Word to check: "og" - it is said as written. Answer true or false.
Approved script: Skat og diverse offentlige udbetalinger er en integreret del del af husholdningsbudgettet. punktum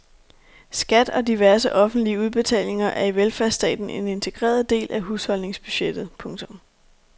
true